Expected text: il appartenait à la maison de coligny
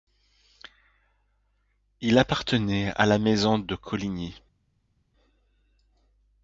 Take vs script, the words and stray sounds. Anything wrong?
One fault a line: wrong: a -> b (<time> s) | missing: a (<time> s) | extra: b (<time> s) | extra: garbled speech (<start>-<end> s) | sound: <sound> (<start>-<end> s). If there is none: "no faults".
no faults